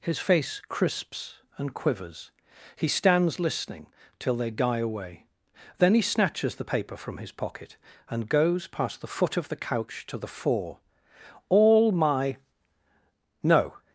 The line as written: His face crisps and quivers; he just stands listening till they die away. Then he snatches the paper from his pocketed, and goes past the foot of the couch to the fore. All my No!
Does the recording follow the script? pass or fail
fail